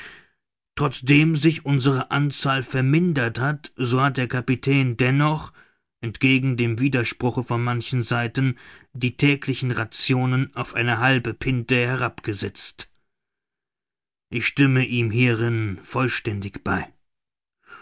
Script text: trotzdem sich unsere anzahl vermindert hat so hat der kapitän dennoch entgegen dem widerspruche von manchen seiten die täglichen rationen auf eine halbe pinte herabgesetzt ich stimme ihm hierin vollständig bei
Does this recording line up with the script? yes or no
yes